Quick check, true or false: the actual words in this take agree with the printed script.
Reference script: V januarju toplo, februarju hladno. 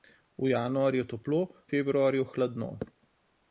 true